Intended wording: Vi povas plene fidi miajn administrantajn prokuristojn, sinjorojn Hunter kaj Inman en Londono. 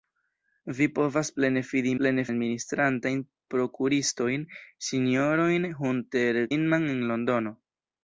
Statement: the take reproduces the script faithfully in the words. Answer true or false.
false